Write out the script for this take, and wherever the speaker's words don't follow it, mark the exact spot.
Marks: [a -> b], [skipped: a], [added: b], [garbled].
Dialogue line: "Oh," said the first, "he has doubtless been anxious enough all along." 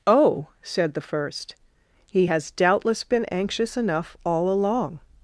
"Oh," said the first, "he has doubtless been anxious enough all along."